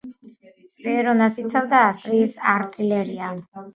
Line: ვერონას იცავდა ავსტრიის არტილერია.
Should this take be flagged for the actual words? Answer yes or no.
no